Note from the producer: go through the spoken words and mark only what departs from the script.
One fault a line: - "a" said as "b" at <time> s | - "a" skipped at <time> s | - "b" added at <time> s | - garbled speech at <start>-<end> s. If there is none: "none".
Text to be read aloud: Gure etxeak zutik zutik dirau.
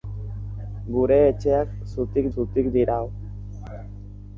none